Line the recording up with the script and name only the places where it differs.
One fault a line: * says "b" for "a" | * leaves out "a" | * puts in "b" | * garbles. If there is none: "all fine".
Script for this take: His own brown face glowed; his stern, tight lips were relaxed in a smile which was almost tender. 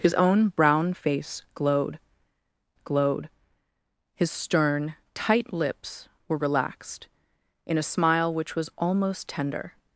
* puts in "glowed"